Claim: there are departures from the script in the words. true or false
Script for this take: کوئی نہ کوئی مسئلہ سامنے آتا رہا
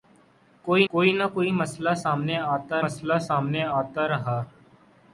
true